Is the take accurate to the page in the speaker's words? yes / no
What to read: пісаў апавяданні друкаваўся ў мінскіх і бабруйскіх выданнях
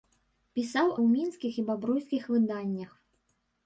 no